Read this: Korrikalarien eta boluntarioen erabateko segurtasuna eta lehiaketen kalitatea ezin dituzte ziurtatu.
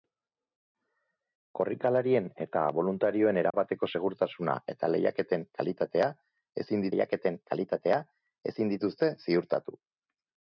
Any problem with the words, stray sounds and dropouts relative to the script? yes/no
yes